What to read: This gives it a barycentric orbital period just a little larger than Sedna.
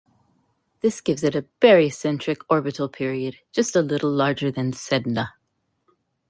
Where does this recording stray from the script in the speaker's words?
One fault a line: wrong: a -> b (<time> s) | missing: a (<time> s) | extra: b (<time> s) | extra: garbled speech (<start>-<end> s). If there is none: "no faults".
no faults